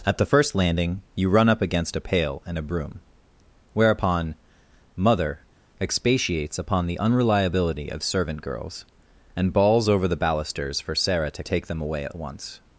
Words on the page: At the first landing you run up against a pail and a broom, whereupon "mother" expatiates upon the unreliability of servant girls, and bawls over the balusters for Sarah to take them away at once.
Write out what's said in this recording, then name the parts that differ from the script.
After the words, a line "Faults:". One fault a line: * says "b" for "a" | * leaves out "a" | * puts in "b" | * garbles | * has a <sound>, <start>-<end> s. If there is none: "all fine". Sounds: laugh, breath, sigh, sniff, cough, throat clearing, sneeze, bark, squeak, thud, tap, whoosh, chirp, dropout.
At the first landing you run up against a pail and a broom, whereupon "mother" expatiates upon the unreliability of servant girls, and bawls over the balusters for Sarah to take them away at once.
Faults:
all fine